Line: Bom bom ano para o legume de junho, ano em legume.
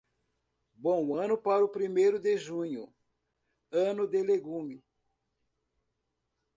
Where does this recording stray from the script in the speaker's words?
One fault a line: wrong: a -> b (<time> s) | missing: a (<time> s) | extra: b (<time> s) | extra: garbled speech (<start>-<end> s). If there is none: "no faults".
missing: bom (1.1 s)
wrong: legume -> primeiro (1.7 s)
wrong: em -> de (4.1 s)